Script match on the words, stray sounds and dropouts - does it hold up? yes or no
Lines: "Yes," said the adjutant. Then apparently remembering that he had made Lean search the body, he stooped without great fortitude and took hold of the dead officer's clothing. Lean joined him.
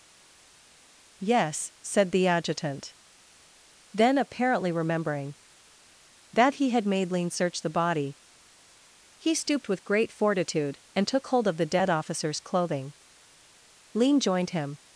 no